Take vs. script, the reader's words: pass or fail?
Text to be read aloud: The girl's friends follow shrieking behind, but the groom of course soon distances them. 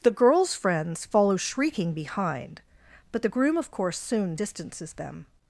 pass